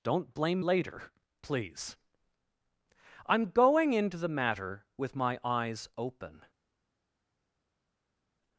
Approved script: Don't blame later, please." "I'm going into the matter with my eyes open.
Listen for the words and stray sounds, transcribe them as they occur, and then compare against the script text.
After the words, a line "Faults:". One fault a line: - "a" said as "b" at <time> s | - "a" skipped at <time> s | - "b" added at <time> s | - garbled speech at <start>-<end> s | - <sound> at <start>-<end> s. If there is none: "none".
Don't blame later, please." "I'm going into the matter with my eyes open.
Faults:
none